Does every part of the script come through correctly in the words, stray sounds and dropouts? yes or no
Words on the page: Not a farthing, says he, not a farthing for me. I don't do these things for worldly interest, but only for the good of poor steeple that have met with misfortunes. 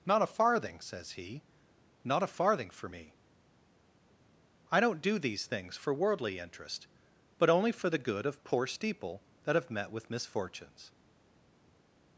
yes